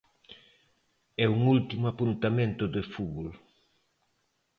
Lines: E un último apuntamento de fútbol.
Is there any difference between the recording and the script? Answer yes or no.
no